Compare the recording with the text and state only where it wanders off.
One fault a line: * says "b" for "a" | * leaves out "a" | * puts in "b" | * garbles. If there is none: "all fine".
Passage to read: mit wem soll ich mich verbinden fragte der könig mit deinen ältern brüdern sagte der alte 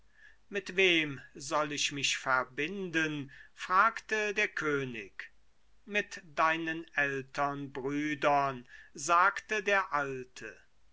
all fine